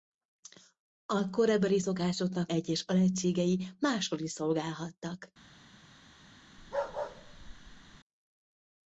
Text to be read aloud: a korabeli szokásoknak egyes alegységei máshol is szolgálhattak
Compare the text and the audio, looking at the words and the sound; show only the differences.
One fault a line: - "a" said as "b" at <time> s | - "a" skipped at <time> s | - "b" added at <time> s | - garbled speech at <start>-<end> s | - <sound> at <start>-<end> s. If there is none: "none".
- bark at 6.6-8.0 s